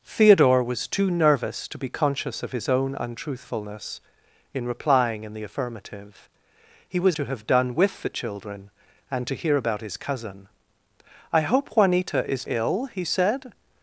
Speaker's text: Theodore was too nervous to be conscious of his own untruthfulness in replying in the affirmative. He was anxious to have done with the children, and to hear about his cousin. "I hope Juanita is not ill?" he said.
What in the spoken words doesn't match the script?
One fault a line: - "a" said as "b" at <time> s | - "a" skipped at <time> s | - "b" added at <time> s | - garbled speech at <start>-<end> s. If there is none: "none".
- "anxious" skipped at 7.2 s
- "not" skipped at 12.5 s